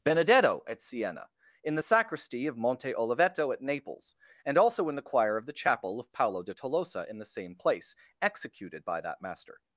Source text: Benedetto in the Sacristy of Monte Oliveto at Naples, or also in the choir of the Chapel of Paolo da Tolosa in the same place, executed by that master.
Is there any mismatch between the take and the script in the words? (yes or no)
yes